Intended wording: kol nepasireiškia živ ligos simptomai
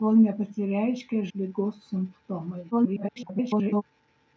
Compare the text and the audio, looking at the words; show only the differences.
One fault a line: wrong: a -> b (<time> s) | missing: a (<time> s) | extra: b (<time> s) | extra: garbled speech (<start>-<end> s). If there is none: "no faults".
missing: živ (1.2 s)
extra: garbled speech (2.7-3.8 s)